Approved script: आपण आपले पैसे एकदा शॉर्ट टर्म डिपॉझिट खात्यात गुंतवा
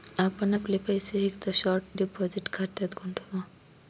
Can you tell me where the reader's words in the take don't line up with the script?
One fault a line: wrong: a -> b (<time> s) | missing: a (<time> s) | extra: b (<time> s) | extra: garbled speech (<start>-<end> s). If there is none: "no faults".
missing: टर्म (1.8 s)